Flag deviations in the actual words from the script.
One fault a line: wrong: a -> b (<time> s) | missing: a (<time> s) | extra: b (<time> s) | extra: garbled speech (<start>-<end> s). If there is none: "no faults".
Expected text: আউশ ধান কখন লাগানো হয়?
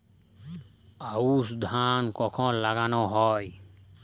no faults